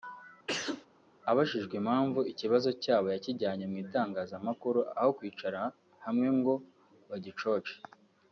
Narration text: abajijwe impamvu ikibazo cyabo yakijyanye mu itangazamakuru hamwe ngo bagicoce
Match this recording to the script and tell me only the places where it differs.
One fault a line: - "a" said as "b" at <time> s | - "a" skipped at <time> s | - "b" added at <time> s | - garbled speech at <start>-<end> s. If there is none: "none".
- "aho kwicara" added at 5.0 s